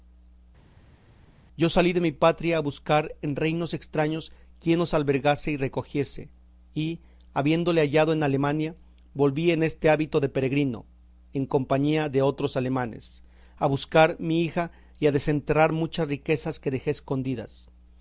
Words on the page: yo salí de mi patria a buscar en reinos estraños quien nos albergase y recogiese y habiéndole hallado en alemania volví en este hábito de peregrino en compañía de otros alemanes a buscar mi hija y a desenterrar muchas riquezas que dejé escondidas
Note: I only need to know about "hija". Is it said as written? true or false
true